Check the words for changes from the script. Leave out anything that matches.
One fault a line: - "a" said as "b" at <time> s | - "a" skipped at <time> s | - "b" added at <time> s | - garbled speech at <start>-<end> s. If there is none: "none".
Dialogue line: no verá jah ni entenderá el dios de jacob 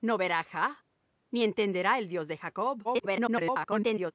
- garbled speech at 2.8-4.1 s